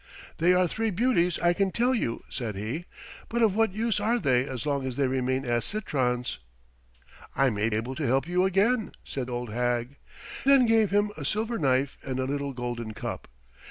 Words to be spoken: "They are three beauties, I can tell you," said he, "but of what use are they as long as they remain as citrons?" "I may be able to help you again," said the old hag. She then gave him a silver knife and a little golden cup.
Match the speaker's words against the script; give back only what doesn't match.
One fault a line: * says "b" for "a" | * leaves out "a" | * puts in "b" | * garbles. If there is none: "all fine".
* leaves out "be"
* leaves out "the"
* leaves out "She"